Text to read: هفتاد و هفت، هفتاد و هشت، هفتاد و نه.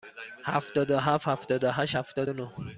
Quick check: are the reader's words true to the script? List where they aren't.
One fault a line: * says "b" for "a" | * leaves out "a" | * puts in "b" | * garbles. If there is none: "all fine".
all fine